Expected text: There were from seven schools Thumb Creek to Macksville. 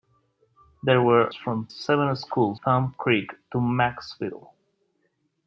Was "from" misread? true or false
false